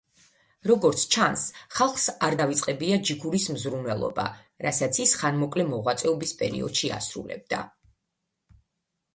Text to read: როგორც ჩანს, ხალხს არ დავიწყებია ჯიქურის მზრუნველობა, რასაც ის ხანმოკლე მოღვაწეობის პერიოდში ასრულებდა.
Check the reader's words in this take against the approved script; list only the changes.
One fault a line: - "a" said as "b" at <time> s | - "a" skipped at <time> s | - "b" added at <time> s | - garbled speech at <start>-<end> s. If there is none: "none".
none